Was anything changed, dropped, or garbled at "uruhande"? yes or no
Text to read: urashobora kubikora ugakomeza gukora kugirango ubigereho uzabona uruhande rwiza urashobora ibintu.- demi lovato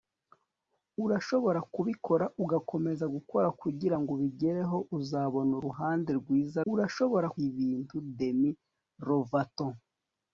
no